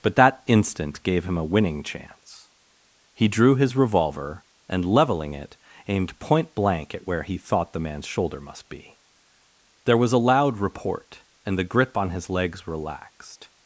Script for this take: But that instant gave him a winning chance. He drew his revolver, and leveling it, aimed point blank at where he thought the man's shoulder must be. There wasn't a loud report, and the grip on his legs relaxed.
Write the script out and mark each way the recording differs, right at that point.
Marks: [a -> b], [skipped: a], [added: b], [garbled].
But that instant gave him a winning chance. He drew his revolver, and leveling it, aimed point blank at where he thought the man's shoulder must be. There [wasn't -> was] a loud report, and the grip on his legs relaxed.